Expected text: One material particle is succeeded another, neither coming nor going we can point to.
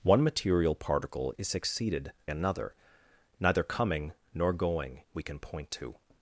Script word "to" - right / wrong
right